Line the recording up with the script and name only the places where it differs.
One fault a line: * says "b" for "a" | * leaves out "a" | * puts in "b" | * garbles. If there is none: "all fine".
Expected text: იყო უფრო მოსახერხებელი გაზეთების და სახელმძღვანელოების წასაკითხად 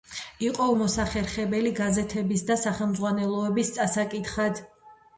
* leaves out "უფრო"